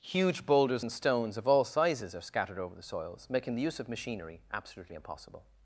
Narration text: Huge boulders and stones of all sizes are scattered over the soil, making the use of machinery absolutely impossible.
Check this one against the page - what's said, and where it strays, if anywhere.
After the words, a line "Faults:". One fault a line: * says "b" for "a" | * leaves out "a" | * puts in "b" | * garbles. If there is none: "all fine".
Huge boulders and stones of all sizes are scattered over the soils, making the use of machinery absolutely impossible.
Faults:
* says "soils" for "soil"